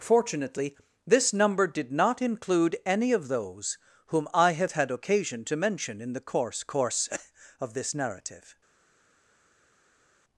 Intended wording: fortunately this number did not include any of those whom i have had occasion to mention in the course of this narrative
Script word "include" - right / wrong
right